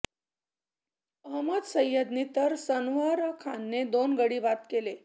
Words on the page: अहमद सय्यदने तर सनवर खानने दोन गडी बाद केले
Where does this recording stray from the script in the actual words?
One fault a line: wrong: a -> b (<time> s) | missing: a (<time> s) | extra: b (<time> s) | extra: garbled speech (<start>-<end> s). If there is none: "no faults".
no faults